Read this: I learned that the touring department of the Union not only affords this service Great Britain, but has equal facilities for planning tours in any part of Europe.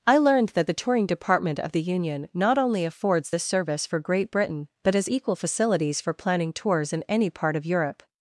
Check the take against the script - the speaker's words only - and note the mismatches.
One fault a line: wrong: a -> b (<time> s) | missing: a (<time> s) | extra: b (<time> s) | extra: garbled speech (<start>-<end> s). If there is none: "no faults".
extra: for (3.9 s)